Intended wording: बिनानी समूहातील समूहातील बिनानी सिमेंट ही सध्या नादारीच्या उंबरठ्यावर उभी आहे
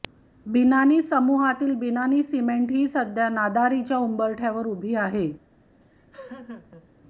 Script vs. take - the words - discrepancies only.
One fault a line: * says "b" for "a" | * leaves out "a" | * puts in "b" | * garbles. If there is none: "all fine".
* leaves out "समूहातील"